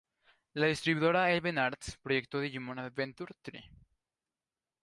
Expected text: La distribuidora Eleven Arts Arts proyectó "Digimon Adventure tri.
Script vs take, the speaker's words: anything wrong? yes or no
yes